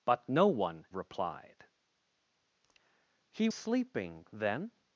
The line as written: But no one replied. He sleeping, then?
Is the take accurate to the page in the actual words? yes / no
yes